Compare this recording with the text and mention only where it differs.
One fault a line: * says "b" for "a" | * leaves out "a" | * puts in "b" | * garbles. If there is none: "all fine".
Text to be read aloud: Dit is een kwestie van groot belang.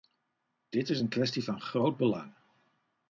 all fine